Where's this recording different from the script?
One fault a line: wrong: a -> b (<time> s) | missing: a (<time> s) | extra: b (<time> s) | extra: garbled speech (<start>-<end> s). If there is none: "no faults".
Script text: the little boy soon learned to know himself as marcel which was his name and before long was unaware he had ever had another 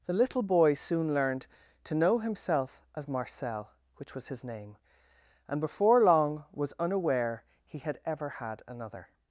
no faults